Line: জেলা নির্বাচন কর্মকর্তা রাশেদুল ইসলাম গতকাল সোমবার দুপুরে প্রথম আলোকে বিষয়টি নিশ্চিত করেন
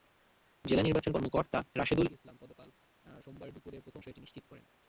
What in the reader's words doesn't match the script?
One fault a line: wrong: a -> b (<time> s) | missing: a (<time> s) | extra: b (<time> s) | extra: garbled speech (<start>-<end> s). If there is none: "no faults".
missing: আলোকে (4.0 s)